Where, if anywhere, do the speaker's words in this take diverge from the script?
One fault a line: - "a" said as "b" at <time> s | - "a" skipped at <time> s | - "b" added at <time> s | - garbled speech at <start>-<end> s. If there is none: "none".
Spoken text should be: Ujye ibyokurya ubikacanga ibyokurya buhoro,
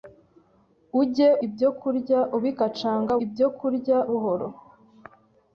none